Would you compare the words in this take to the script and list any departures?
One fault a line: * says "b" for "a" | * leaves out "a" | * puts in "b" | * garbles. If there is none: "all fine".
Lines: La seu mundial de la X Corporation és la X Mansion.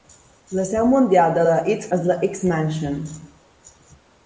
* leaves out "Corporation"